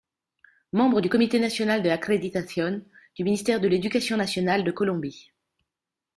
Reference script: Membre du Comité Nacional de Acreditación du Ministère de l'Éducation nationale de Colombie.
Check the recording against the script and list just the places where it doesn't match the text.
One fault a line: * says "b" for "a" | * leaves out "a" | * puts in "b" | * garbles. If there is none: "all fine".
all fine